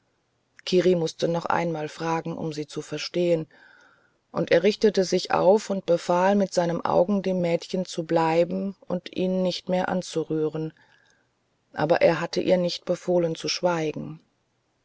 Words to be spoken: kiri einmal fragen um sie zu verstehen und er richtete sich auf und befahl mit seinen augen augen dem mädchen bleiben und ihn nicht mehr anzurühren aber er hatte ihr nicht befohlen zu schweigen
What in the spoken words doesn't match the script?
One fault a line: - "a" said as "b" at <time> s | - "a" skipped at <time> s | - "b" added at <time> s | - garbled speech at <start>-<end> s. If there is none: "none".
- "mußte noch" added at 0.9 s
- "augen" skipped at 7.2 s
- "zu" added at 7.8 s